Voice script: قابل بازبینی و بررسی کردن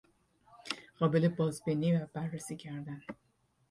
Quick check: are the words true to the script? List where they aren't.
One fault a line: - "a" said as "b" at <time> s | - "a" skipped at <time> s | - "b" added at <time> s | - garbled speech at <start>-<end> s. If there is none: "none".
none